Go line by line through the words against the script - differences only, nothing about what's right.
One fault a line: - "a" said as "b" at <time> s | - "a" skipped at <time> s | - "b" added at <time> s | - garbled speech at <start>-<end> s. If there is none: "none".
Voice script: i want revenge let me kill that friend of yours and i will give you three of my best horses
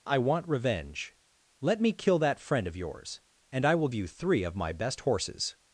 - "give" skipped at 3.9 s